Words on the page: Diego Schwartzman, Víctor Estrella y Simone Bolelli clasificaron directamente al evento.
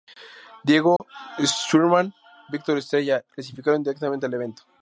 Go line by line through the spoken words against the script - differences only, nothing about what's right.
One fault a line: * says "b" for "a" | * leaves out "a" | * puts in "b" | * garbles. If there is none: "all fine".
* leaves out "y Simone Bolelli"